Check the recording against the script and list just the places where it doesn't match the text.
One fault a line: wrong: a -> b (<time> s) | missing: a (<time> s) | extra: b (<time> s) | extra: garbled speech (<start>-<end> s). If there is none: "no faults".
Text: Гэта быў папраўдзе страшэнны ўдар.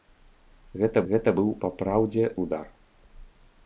extra: гэта (1.1 s)
missing: страшэнны (2.2 s)